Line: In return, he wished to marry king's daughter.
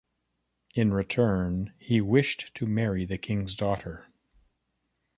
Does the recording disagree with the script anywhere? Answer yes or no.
yes